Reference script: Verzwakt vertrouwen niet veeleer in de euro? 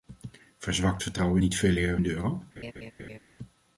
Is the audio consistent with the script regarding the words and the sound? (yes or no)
no